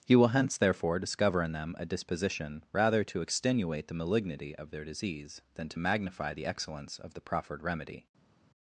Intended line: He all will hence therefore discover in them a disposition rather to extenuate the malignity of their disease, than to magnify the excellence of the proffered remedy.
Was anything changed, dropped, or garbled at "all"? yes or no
yes